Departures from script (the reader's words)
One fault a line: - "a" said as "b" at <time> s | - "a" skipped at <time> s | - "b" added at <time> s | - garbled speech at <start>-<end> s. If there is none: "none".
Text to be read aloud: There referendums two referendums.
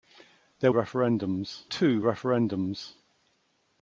none